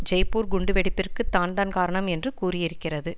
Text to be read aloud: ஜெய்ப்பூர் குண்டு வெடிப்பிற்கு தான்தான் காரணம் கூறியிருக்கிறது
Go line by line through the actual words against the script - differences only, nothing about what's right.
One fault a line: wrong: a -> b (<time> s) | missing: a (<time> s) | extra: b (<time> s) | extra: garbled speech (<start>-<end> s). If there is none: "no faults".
extra: என்று (2.1 s)